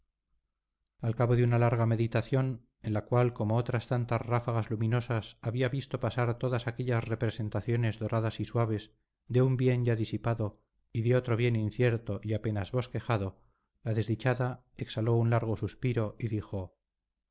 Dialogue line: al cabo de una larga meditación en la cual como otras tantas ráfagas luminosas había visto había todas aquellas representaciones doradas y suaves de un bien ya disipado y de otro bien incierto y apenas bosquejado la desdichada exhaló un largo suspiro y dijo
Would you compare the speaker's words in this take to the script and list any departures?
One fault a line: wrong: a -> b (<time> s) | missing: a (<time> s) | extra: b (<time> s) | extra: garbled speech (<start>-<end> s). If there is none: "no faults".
wrong: había -> pasar (6.0 s)